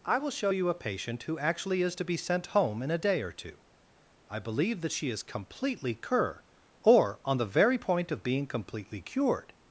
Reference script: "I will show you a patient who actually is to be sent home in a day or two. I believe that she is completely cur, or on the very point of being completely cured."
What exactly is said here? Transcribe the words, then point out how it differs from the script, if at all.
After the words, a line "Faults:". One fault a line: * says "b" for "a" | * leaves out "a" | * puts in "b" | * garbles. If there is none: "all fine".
"I will show you a patient who actually is to be sent home in a day or two. I believe that she is completely cur, or on the very point of being completely cured."
Faults:
all fine